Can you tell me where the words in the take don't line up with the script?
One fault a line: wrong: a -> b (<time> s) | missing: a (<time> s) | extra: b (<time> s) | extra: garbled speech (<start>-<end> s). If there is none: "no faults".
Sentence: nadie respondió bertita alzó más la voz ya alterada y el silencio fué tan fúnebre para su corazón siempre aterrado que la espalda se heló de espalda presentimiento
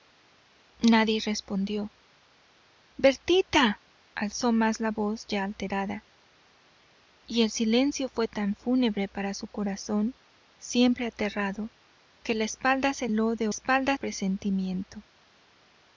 no faults